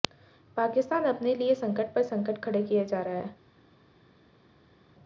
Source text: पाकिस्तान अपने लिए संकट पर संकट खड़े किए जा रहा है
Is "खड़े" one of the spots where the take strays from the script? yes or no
no